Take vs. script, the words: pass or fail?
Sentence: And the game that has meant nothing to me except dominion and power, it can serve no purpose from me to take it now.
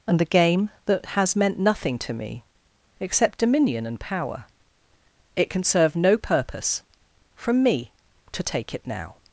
pass